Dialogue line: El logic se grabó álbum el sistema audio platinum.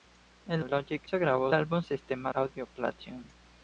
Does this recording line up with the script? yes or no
yes